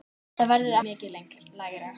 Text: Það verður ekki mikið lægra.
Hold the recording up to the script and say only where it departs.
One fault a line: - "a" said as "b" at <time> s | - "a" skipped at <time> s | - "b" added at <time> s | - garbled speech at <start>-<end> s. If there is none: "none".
- "ekki" skipped at 0.8 s